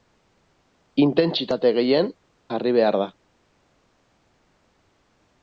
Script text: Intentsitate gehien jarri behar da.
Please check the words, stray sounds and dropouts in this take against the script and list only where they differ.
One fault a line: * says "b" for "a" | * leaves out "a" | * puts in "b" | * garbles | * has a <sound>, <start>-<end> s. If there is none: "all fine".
all fine